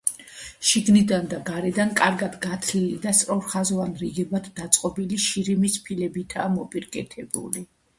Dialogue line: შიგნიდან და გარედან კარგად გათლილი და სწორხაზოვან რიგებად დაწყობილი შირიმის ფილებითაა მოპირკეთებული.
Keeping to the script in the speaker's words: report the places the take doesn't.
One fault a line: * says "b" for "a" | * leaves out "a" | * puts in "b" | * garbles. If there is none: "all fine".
all fine